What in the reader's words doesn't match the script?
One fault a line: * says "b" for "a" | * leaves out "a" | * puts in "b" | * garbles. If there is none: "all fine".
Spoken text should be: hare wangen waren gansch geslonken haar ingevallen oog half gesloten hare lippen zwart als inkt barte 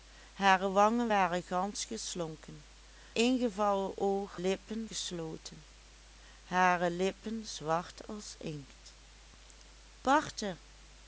* leaves out "haar"
* says "lippen" for "half"